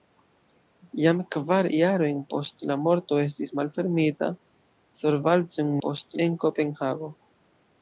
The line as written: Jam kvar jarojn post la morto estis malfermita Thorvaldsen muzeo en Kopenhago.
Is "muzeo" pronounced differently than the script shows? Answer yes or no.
yes